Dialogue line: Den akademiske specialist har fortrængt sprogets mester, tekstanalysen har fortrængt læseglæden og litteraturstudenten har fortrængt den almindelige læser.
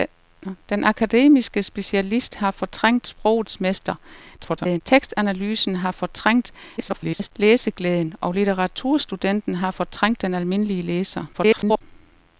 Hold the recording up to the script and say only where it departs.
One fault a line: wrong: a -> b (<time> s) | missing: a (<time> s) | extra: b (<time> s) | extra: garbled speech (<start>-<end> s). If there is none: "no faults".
extra: garbled speech (4.4-4.8 s)
extra: garbled speech (6.8-7.3 s)
extra: garbled speech (11.3-11.8 s)